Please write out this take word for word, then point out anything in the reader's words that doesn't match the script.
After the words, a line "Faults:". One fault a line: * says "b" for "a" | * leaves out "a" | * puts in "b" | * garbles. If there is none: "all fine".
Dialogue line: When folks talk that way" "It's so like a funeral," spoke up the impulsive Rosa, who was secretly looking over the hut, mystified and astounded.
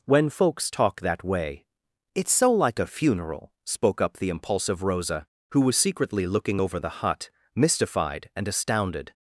When folks talk that way" "It's so like a funeral," spoke up the impulsive Rosa, who was secretly looking over the hut, mystified and astounded.
Faults:
all fine